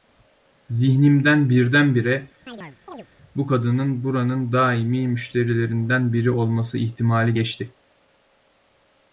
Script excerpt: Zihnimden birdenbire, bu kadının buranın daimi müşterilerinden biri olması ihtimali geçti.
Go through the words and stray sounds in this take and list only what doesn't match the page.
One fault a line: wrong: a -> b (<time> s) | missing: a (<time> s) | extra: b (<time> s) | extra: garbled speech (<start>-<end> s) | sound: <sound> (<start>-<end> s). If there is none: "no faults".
sound: chirp (2.5-3.1 s)